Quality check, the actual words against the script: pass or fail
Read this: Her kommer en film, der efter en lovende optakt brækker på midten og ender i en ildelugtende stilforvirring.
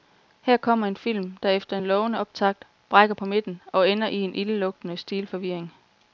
pass